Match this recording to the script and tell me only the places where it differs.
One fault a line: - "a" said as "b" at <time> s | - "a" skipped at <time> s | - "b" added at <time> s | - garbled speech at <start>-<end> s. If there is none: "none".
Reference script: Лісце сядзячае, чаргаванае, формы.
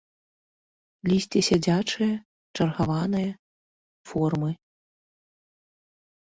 none